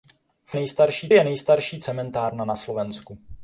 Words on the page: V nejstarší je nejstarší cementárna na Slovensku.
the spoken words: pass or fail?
pass